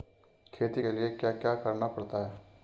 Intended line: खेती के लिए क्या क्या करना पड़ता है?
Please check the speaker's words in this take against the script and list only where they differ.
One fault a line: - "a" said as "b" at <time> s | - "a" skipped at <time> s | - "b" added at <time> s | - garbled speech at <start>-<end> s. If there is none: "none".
none